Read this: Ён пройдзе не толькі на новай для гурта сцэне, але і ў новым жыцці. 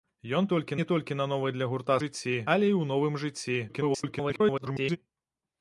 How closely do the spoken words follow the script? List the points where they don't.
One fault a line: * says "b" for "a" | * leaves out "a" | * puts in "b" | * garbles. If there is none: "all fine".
* says "толькі" for "пройдзе"
* says "жыцці" for "сцэне"
* garbles